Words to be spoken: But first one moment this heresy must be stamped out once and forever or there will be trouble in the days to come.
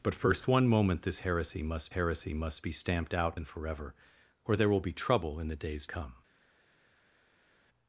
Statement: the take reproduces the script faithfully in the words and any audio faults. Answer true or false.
false